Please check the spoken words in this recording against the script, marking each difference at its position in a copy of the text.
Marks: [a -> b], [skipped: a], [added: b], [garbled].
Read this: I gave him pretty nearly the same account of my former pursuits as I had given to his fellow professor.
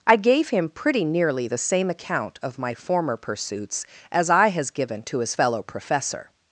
I gave him pretty nearly the same account of my former pursuits as I [had -> has] given to his fellow professor.